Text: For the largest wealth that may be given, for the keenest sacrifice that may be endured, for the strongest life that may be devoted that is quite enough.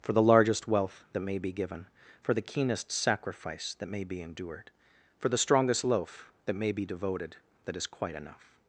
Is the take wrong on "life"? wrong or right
wrong